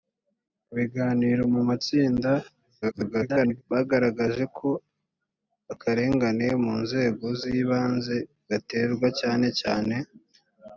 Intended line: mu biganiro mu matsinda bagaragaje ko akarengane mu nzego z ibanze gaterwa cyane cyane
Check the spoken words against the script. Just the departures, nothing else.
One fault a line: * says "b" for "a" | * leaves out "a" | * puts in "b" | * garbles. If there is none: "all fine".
* garbles